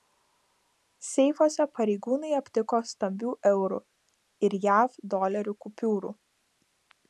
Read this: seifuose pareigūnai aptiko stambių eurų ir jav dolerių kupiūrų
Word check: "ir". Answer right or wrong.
right